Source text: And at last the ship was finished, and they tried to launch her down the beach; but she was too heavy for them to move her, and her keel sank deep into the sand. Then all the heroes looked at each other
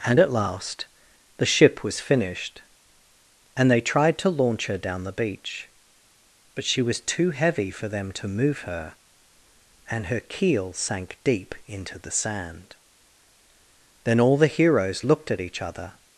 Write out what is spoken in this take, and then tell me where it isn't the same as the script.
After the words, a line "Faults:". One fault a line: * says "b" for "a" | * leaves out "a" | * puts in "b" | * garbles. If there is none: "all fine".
And at last the ship was finished, and they tried to launch her down the beach; but she was too heavy for them to move her, and her keel sank deep into the sand. Then all the heroes looked at each other
Faults:
all fine